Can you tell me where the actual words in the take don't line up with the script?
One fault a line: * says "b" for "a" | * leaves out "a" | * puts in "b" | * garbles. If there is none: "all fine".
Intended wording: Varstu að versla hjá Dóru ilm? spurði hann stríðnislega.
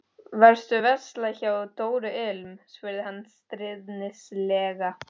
all fine